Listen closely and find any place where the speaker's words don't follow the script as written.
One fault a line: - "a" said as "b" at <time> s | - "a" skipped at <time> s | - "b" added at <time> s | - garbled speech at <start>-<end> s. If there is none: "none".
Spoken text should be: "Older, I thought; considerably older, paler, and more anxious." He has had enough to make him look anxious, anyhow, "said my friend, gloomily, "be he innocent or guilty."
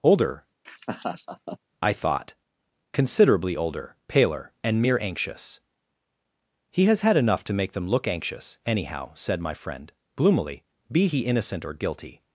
- "more" said as "mere" at 4.8 s
- "him" said as "them" at 7.7 s